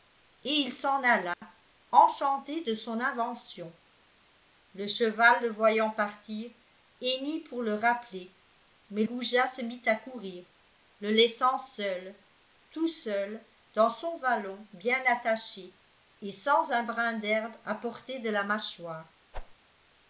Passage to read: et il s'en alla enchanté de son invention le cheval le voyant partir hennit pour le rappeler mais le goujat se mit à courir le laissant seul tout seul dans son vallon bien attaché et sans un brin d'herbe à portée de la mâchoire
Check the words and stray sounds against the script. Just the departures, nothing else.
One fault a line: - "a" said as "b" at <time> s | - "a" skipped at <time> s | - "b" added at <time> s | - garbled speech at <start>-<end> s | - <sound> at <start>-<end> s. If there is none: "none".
- dropout at 1.3-1.4 s
- "le" skipped at 9.0 s
- whoosh at 19.3-19.6 s